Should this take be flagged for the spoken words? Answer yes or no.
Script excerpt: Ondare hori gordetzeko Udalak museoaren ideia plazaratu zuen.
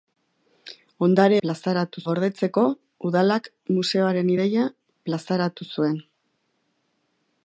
yes